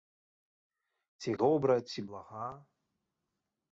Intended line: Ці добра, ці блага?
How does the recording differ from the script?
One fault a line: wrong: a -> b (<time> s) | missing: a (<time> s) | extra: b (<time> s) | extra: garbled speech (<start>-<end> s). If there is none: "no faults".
no faults